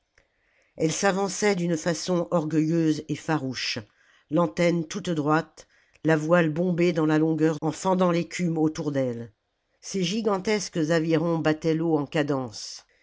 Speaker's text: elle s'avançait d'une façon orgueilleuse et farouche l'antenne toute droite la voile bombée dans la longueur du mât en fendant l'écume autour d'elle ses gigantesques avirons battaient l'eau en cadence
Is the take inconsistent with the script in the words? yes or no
yes